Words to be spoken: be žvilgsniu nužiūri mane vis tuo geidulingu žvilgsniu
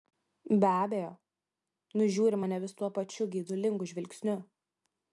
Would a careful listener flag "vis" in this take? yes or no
no